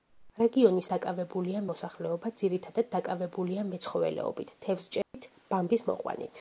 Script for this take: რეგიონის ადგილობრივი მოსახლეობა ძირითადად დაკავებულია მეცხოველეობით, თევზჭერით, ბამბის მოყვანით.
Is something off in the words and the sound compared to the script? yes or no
yes